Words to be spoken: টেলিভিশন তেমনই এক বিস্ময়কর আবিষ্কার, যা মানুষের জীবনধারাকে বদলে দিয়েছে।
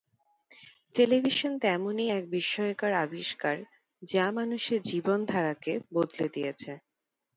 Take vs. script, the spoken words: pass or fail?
pass